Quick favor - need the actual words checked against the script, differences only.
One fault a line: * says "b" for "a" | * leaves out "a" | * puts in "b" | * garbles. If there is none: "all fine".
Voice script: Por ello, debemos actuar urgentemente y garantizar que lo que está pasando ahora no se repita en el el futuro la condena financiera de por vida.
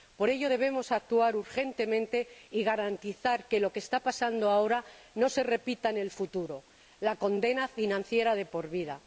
* leaves out "el"